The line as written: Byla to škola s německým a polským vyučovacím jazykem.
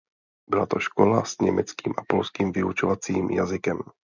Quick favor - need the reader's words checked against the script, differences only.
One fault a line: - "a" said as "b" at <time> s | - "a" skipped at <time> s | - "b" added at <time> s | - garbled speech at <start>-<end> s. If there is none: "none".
none